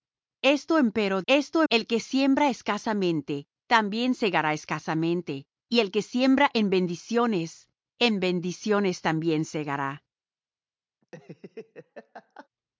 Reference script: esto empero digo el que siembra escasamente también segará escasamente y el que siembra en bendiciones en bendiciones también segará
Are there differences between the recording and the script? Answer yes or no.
yes